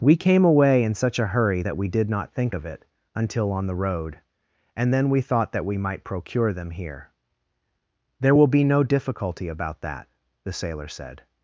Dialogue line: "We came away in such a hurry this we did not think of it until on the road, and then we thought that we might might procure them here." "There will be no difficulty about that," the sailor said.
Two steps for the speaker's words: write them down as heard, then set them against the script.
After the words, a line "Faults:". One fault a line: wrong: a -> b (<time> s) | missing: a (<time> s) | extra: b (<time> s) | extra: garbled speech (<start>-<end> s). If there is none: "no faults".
"We came away in such a hurry that we did not think of it until on the road, and then we thought that we might procure them here." "There will be no difficulty about that," the sailor said.
Faults:
wrong: this -> that (1.6 s)
missing: might (6.0 s)